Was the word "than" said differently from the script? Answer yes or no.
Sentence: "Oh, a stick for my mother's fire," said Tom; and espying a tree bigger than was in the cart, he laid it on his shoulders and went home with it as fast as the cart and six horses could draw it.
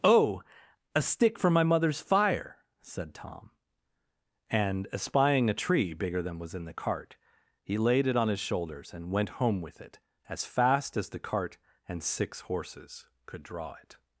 no